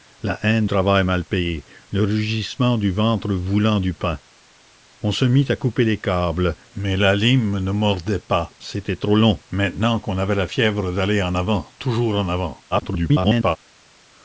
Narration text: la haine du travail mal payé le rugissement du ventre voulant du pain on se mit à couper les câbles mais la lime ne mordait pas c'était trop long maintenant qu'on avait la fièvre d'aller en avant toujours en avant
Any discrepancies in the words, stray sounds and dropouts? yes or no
yes